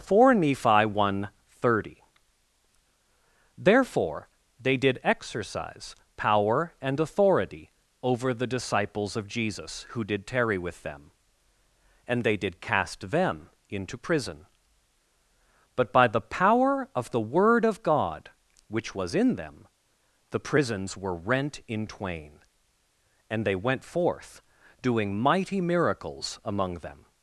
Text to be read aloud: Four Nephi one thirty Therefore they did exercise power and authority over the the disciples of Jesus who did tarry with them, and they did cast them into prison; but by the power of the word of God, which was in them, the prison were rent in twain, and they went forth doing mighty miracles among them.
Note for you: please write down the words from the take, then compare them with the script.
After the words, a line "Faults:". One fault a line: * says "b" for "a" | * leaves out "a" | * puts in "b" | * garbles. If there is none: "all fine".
Four Nephi one thirty Therefore they did exercise power and authority over the disciples of Jesus who did tarry with them, and they did cast them into prison; but by the power of the word of God, which was in them, the prisons were rent in twain, and they went forth doing mighty miracles among them.
Faults:
* leaves out "the"
* says "prisons" for "prison"